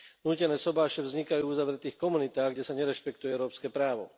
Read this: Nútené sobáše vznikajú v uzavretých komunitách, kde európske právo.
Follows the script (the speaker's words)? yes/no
no